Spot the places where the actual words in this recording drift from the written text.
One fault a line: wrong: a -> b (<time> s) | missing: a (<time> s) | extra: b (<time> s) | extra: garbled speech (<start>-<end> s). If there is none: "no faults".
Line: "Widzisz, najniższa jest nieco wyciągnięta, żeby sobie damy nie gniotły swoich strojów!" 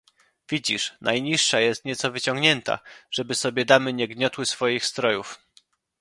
no faults